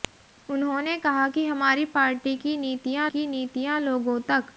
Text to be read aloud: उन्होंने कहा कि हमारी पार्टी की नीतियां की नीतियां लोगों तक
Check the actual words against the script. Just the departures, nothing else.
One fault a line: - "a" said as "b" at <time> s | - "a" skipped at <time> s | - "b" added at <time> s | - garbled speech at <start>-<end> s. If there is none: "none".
none